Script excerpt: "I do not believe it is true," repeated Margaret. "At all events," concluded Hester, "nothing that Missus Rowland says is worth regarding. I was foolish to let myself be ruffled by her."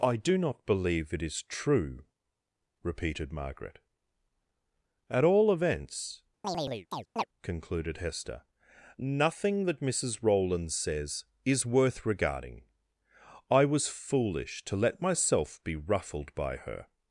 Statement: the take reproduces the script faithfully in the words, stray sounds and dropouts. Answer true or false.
false